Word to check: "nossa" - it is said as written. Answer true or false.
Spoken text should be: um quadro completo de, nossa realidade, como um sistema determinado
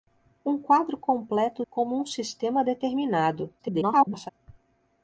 false